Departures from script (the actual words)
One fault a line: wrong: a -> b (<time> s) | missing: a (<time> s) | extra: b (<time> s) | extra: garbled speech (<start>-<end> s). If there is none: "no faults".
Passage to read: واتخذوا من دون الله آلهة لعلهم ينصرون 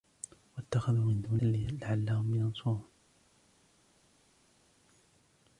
missing: الله آلهة (1.4 s)